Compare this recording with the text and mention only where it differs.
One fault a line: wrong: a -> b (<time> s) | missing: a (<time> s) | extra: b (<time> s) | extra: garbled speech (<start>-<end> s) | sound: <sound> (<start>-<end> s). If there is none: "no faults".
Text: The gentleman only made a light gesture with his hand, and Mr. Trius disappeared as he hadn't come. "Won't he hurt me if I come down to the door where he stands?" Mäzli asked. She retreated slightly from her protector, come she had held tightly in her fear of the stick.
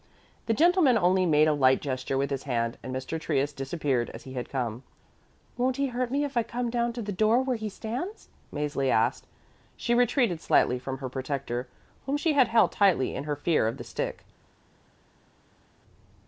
wrong: hadn't -> had (4.3 s)
wrong: come -> whom (12.0 s)